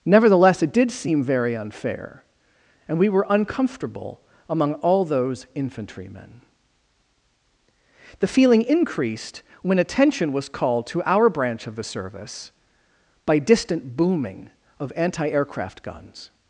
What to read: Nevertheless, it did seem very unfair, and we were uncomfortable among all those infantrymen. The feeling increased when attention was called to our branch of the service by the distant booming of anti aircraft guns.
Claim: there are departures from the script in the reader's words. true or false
true